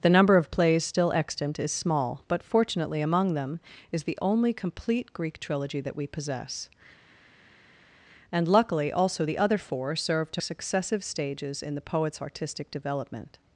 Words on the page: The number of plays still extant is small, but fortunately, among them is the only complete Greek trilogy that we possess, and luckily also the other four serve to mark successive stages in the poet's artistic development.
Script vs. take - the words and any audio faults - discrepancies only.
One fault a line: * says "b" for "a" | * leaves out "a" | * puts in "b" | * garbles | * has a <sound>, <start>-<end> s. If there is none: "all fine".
* leaves out "mark"